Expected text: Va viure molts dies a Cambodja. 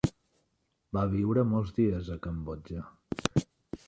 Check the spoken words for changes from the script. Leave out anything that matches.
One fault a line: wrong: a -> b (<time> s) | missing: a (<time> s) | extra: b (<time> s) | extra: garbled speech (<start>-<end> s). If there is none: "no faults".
no faults